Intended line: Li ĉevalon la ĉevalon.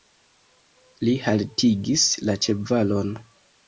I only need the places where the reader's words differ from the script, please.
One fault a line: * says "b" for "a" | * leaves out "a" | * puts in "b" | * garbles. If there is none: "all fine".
* says "haltigis" for "ĉevalon"